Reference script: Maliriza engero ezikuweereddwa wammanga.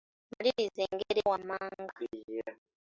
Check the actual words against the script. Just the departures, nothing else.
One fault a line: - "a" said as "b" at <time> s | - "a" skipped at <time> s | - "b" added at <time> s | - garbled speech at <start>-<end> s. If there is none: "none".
- "ezikuweereddwa" skipped at 1.2 s